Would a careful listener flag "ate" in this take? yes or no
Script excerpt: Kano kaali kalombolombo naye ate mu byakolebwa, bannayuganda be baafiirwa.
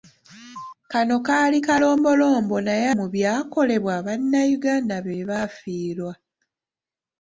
yes